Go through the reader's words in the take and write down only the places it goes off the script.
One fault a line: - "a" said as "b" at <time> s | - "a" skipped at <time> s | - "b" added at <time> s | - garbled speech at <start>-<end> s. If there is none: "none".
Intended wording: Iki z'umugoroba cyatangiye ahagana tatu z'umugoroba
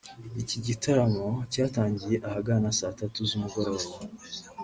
- "z'umugoroba" said as "gitaramo" at 0.7 s
- "saa" added at 2.8 s